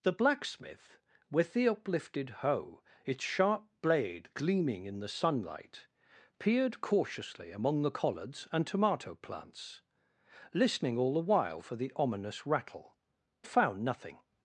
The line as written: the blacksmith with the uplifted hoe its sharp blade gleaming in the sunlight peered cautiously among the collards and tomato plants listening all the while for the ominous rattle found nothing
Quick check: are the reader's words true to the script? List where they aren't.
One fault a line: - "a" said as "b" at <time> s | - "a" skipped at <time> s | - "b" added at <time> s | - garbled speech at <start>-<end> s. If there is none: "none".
none